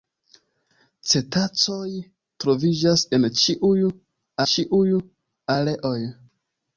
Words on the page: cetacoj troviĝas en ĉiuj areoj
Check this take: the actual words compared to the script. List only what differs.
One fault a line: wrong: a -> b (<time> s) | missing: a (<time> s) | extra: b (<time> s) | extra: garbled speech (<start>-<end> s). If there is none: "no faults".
extra: ĉiuj (4.5 s)